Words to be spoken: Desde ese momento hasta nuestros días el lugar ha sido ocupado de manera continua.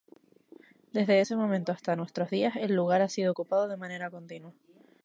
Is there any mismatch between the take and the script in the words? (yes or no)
no